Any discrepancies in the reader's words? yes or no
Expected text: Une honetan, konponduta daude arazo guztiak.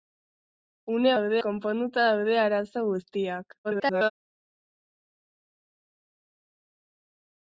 yes